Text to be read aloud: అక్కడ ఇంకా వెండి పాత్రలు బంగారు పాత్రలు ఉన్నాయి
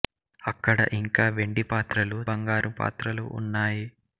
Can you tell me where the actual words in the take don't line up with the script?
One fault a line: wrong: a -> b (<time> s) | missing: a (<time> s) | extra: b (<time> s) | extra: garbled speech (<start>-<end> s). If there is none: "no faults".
no faults